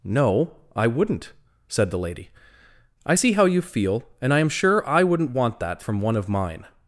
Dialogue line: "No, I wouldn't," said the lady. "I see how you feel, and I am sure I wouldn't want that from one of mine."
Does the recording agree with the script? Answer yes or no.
yes